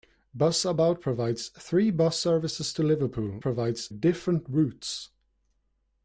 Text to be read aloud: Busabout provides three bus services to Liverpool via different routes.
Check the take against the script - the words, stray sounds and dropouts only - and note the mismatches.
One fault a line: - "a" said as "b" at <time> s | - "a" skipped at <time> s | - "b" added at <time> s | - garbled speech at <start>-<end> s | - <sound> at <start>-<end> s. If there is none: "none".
- "via" said as "provides" at 3.4 s